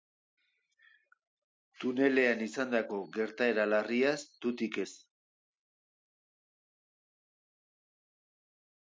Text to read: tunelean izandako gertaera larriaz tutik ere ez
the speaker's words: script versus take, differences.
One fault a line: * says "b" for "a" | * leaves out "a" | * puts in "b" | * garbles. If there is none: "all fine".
* leaves out "ere"